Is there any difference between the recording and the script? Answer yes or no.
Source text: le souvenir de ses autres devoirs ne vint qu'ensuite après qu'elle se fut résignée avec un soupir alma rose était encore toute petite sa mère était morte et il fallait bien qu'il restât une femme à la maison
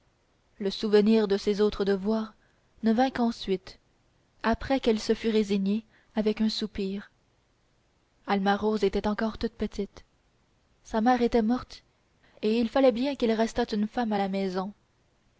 no